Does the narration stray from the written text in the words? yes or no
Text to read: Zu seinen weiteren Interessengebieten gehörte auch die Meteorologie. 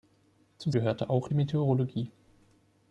yes